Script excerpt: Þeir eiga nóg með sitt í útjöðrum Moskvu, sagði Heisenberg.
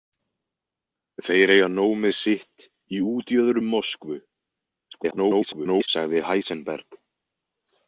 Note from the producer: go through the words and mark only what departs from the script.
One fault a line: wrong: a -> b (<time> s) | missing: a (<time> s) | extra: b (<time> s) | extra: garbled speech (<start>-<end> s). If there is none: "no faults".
extra: garbled speech (4.9-5.9 s)